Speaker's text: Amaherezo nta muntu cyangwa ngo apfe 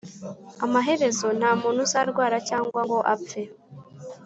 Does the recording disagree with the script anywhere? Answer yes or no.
yes